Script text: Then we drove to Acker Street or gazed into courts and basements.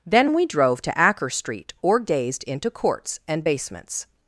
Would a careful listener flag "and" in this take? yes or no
no